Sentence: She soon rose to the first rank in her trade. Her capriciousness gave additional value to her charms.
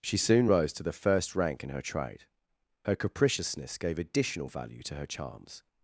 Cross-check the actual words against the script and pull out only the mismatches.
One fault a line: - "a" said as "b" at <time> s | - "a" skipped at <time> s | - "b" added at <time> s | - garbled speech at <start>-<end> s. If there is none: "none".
none